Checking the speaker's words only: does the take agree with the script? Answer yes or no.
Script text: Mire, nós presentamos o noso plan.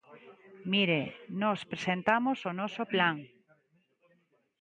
yes